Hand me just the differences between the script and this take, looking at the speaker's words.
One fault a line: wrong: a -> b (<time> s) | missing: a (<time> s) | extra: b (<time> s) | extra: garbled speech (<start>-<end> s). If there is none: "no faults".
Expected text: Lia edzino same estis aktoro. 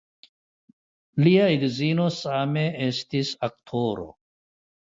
no faults